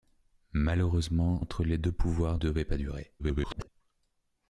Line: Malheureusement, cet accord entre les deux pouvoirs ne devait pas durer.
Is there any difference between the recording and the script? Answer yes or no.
yes